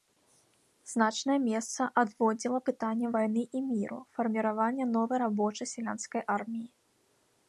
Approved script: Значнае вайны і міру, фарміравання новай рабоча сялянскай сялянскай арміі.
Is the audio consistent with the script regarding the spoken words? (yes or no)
no